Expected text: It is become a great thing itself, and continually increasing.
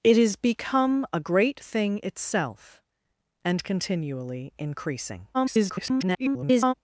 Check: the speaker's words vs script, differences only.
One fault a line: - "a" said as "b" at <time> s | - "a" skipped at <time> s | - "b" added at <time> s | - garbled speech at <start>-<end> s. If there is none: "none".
- garbled speech at 5.3-6.7 s